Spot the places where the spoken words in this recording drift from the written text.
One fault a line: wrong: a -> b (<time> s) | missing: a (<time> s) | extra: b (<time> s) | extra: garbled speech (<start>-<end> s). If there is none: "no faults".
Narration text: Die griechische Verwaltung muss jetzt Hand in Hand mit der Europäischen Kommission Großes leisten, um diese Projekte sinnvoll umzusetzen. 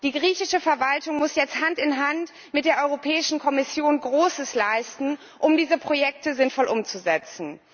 no faults